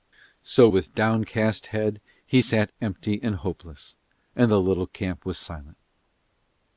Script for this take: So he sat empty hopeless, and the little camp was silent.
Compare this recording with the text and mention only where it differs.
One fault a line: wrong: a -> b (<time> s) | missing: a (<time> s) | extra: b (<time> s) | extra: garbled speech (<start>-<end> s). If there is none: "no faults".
extra: with downcast head (0.7 s)
extra: and (3.2 s)